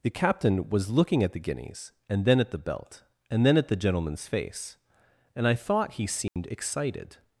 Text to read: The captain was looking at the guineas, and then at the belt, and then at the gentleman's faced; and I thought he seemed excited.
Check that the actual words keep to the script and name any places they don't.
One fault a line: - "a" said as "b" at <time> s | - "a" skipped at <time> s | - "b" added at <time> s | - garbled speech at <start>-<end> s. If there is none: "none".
- "faced" said as "face" at 4.3 s